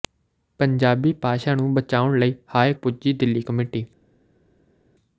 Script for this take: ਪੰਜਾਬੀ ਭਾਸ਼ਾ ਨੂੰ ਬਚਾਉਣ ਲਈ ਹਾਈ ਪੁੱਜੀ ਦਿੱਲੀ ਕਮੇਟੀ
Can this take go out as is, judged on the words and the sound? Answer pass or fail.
pass